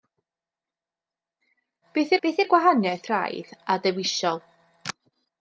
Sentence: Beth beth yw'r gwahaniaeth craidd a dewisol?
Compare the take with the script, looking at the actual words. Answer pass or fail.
pass